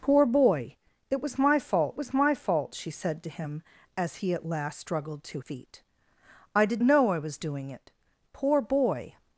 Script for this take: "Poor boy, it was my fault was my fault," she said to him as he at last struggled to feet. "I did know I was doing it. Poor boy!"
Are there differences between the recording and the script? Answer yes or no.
no